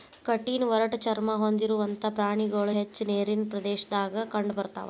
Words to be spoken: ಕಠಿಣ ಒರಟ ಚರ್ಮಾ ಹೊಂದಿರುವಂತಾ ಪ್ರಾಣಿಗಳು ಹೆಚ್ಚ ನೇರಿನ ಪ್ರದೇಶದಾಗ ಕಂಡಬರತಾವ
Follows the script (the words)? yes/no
yes